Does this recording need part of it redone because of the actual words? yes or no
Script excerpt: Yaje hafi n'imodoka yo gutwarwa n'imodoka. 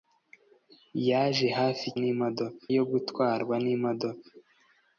no